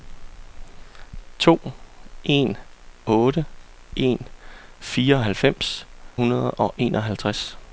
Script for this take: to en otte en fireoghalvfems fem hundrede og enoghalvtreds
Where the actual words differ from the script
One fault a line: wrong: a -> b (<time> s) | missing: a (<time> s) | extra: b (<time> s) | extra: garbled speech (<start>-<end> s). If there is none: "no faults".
missing: fem (5.9 s)